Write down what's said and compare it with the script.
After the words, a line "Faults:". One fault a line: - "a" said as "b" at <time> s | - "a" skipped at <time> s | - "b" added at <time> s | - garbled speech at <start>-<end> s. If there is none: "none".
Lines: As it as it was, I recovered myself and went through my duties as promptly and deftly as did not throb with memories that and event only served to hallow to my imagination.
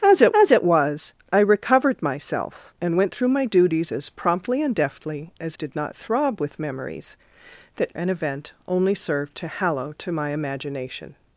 As it as it was, I recovered myself and went through my duties as promptly and deftly as did not throb with memories that and event only served to hallow to my imagination.
Faults:
none